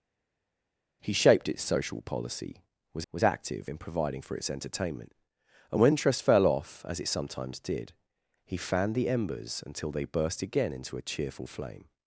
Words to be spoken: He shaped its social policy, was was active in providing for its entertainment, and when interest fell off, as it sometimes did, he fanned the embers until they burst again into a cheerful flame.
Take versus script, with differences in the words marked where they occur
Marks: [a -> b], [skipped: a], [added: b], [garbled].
He shaped its social policy, was was active in providing for its entertainment, and when interest fell off, as it sometimes did, he fanned the embers until they burst again into a cheerful flame.